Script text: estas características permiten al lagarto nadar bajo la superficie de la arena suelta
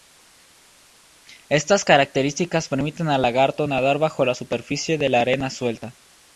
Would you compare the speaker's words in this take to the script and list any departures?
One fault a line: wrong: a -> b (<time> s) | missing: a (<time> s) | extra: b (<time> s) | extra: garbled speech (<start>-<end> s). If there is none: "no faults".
no faults